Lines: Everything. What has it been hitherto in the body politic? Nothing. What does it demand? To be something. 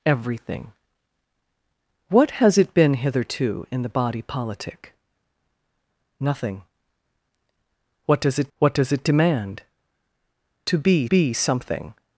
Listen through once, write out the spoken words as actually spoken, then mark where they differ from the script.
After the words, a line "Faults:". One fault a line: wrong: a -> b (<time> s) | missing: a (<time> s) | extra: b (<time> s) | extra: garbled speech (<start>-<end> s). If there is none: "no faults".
Everything. What has it been hitherto in the body politic? Nothing. What does it what does it demand? To be be something.
Faults:
extra: what does it (8.6 s)
extra: be (11.0 s)